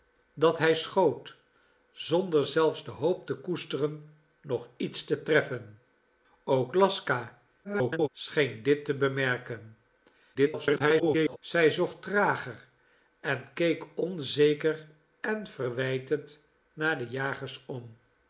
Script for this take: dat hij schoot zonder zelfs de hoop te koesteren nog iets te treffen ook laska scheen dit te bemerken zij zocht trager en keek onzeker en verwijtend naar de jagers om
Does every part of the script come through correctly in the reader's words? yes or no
no